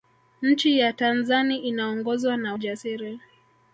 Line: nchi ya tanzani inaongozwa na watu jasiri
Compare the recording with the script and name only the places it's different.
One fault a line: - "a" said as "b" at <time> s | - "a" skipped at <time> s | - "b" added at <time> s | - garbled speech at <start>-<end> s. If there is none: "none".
- "watu" skipped at 2.5 s